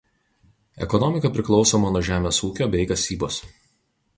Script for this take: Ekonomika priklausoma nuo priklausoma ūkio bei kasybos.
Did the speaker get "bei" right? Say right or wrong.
right